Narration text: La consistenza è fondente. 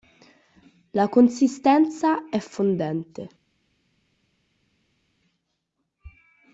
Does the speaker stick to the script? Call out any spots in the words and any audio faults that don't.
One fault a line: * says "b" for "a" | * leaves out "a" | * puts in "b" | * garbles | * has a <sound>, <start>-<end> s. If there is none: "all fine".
all fine